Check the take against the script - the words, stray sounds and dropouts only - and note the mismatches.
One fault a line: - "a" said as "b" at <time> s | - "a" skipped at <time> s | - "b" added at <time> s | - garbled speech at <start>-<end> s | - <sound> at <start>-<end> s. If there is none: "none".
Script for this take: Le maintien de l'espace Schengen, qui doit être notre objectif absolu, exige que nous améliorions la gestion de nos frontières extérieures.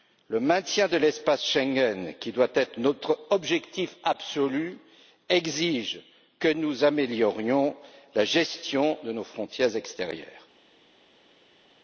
none